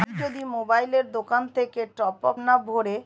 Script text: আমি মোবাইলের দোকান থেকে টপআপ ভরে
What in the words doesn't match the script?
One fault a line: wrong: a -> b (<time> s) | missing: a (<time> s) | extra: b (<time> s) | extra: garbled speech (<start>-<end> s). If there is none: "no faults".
extra: যদি (0.2 s)
extra: না (2.4 s)